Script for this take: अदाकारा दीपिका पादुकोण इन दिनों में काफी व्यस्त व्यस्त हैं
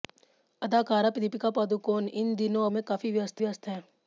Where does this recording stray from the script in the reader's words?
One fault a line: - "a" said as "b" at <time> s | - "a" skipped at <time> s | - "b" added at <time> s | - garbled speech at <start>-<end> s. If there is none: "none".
none